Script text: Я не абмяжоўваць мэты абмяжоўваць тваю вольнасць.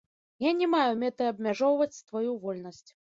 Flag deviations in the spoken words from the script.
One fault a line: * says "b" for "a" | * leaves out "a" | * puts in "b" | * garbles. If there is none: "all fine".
* says "маю" for "абмяжоўваць"